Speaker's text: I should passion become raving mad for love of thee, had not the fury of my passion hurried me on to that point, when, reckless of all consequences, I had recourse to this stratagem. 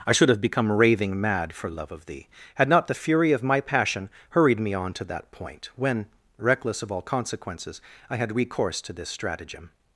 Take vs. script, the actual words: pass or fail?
fail